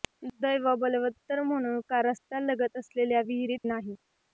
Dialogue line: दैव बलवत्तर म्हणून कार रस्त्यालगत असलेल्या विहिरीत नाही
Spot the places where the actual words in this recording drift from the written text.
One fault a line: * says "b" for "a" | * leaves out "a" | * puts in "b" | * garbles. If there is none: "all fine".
all fine